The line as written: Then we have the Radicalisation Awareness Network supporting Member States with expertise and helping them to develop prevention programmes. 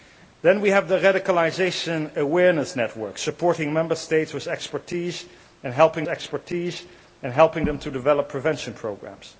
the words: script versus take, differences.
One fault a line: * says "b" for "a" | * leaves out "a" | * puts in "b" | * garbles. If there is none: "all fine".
* puts in "expertise and helping"